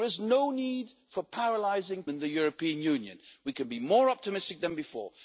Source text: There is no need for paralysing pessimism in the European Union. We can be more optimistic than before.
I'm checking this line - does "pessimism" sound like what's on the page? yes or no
no